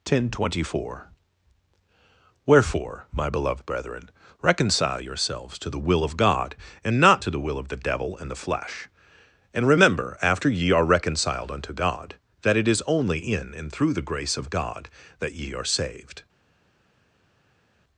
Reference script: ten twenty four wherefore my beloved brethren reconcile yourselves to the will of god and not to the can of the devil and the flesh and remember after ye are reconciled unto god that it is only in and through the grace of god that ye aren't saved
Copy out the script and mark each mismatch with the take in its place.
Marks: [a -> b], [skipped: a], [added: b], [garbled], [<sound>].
ten twenty four wherefore my beloved brethren reconcile yourselves to the will of god and not to the [can -> will] of the devil and the flesh and remember after ye are reconciled unto god that it is only in and through the grace of god that ye [aren't -> are] saved